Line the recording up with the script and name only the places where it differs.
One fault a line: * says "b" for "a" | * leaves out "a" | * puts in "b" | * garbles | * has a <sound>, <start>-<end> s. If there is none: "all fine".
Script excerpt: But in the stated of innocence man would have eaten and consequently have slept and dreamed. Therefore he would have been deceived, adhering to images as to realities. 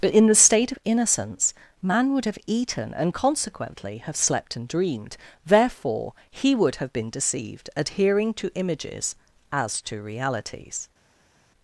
* says "state" for "stated"